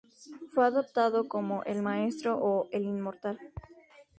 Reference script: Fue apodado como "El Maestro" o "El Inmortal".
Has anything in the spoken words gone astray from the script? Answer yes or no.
no